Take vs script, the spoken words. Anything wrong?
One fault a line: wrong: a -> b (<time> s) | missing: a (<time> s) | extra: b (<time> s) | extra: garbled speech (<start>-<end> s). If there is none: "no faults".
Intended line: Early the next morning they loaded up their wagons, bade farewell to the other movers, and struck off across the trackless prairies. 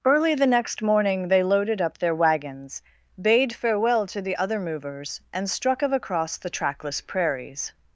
wrong: off -> of (5.8 s)